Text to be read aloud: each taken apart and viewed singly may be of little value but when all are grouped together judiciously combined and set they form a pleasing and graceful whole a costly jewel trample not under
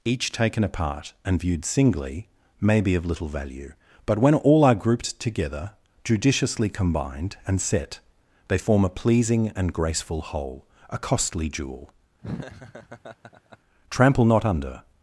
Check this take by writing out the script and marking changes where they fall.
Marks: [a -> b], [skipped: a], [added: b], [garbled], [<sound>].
each taken apart and viewed singly may be of little value but when all are grouped together judiciously combined and set they form a pleasing and graceful whole a costly jewel [laugh] trample not under